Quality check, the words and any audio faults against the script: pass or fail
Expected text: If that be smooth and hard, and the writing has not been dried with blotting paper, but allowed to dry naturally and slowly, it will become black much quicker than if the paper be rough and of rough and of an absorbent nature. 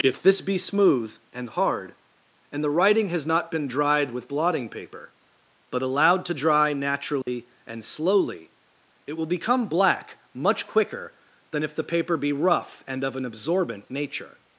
fail